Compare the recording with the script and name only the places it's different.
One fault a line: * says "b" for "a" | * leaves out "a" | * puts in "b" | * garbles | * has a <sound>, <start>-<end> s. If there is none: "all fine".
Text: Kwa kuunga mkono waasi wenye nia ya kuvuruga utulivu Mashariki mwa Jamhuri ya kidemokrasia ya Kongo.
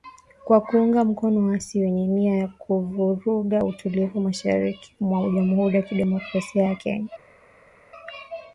all fine